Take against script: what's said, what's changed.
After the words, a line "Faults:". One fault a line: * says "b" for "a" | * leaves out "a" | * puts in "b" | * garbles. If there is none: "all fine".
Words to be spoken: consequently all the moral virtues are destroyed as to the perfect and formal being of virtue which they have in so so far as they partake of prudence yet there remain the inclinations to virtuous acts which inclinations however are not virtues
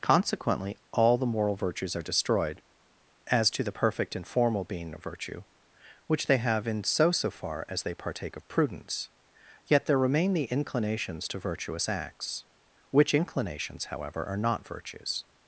consequently all the moral virtues are destroyed as to the perfect and formal being of virtue which they have in so so far as they partake of prudence yet there remain the inclinations to virtuous acts which inclinations however are not virtues
Faults:
all fine